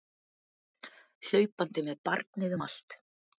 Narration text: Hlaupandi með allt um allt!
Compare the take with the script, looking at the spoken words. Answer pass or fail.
fail